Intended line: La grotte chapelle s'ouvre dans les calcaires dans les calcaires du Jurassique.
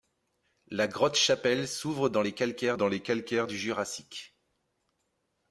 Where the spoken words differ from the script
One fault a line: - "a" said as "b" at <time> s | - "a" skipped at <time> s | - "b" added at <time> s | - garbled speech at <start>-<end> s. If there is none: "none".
none